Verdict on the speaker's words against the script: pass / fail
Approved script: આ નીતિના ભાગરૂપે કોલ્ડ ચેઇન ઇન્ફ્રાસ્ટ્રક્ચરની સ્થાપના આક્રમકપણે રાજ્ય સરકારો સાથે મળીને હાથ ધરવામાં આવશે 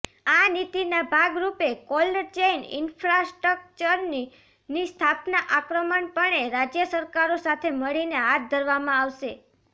pass